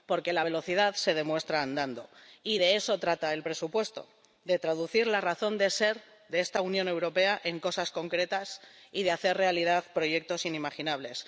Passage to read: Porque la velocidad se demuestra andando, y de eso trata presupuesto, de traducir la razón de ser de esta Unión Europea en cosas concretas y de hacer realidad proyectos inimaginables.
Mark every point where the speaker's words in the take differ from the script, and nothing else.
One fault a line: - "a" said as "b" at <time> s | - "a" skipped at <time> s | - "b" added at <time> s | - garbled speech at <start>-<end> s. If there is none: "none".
- "el" added at 3.3 s